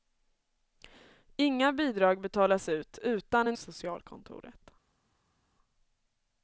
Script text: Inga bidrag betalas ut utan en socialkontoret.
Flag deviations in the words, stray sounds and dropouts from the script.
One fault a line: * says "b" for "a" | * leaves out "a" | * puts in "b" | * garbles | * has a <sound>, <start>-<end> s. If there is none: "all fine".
all fine